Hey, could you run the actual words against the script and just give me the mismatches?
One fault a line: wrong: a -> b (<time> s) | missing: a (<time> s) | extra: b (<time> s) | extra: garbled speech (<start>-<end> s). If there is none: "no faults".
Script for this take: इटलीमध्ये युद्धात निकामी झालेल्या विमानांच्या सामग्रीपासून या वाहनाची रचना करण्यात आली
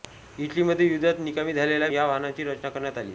missing: विमानांच्या सामग्रीपासून (1.9 s)